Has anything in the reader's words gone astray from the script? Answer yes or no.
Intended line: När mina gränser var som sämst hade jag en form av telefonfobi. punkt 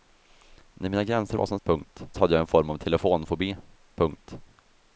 yes